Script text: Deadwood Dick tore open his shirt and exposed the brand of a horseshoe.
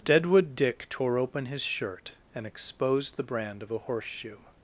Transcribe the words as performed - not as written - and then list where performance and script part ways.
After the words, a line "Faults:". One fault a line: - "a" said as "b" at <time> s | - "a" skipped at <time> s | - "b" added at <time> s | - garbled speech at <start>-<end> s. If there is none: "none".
Deadwood Dick tore open his shirt and exposed the brand of a horseshoe.
Faults:
none